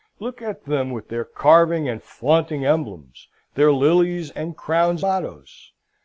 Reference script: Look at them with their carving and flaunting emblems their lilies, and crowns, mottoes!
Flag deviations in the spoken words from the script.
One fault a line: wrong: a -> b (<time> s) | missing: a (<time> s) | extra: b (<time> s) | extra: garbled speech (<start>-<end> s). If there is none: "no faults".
no faults